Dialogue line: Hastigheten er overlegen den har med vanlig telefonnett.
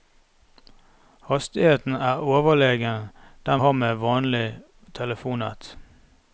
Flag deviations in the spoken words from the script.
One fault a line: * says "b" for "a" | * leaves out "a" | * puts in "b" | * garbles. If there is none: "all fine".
all fine